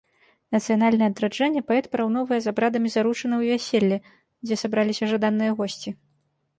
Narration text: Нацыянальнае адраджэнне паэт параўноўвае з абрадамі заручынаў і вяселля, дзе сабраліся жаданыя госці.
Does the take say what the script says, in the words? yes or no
yes